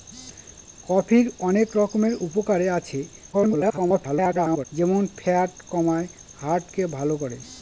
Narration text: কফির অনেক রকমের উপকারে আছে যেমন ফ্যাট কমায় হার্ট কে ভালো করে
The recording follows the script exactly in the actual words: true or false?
false